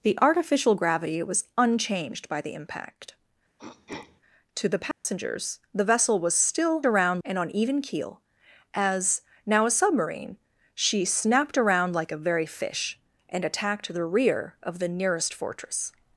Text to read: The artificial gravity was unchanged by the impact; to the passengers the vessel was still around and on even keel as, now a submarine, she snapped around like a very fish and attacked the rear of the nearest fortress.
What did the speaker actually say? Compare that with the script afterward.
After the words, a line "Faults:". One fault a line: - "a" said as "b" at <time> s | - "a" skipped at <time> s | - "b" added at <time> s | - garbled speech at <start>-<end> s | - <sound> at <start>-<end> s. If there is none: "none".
The artificial gravity was unchanged by the impact; to the passengers the vessel was still around and on even keel as, now a submarine, she snapped around like a very fish and attacked the rear of the nearest fortress.
Faults:
- throat clearing at 3.6-4.2 s
- dropout at 4.9-5.1 s